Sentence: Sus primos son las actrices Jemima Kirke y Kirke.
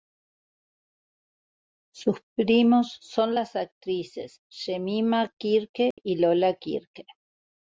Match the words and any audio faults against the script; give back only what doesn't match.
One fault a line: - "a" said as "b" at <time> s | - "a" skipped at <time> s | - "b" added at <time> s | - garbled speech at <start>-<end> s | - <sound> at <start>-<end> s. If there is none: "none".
- dropout at 5.9-6.0 s
- "Lola" added at 6.2 s